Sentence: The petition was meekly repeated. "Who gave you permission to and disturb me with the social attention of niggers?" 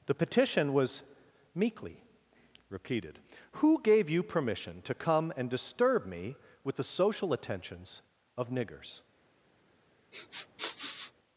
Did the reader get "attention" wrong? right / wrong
wrong